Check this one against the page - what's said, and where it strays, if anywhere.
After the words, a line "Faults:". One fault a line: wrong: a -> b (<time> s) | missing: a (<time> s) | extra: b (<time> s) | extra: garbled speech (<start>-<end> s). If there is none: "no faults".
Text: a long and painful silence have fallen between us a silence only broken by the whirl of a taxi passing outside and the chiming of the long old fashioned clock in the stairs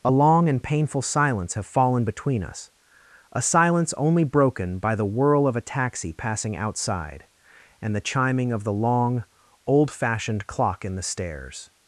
a long and painful silence have fallen between us a silence only broken by the whirl of a taxi passing outside and the chiming of the long old fashioned clock in the stairs
Faults:
no faults